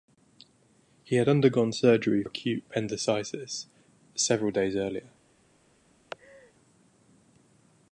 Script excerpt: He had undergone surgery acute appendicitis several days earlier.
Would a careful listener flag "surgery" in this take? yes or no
no